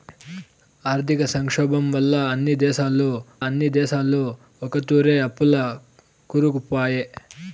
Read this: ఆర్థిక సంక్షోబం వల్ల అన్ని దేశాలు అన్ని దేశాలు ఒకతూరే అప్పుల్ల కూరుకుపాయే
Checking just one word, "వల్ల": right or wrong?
right